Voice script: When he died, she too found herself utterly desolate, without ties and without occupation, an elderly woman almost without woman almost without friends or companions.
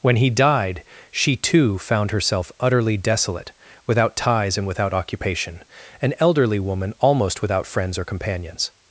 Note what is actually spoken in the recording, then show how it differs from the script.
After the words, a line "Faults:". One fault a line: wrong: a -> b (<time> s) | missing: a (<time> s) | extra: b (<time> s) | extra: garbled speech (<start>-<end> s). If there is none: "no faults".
When he died, she too found herself utterly desolate, without ties and without occupation, an elderly woman almost without friends or companions.
Faults:
missing: woman almost without (7.7 s)